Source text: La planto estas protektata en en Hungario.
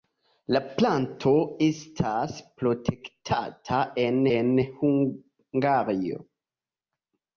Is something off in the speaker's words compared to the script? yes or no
no